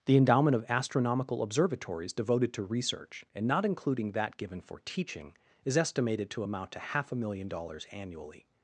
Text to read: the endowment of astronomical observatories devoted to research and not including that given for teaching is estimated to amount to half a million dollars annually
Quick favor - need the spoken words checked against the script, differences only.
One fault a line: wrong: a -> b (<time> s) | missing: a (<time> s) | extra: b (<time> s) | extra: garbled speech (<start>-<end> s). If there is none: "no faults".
no faults